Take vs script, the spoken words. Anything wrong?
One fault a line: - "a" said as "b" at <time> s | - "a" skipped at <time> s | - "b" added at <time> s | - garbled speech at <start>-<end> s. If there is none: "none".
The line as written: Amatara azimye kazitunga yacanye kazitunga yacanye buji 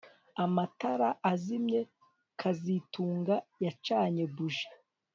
- "kazitunga yacanye" skipped at 4.2 s